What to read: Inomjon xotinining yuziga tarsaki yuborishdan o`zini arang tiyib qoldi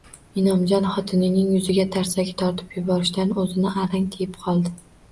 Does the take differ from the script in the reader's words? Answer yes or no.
yes